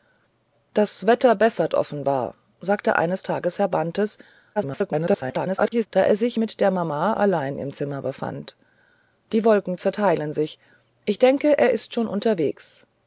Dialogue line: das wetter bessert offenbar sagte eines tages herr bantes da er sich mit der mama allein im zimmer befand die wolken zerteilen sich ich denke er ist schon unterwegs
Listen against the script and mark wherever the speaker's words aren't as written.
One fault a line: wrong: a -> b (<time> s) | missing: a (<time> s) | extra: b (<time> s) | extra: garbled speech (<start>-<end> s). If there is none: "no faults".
extra: garbled speech (4.6-5.9 s)